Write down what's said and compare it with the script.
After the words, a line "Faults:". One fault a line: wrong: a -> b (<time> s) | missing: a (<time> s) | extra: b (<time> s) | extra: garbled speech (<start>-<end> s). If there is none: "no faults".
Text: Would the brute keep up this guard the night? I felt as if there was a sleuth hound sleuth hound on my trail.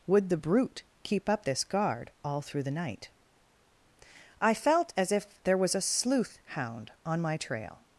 Would the brute keep up this guard all through the night? I felt as if there was a sleuth hound on my trail.
Faults:
extra: all through (2.2 s)
missing: sleuth hound (6.9 s)